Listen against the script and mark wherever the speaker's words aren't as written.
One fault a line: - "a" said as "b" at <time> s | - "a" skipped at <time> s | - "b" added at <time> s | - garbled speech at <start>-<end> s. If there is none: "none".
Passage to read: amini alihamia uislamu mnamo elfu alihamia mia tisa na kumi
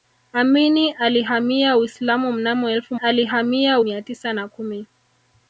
none